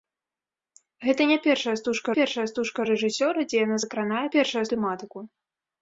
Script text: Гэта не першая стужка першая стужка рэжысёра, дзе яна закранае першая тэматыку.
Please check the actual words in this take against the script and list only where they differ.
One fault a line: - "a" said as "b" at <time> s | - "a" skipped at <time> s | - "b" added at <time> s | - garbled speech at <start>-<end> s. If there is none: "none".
none